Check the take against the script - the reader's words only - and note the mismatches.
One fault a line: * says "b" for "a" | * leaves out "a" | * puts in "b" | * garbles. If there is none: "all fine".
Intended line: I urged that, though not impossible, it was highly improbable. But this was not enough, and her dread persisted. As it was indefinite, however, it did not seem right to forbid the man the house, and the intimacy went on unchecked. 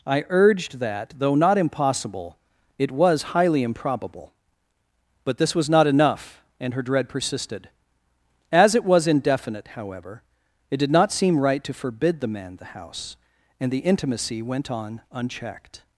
all fine